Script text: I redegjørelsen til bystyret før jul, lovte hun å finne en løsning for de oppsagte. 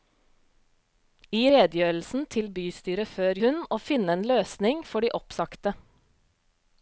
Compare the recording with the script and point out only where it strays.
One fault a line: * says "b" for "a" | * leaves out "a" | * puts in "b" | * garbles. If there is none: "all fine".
* leaves out "jul lovte"